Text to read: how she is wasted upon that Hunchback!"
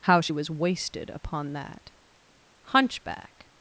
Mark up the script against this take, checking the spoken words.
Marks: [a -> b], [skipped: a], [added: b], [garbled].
how she [is -> was] wasted upon that Hunchback!"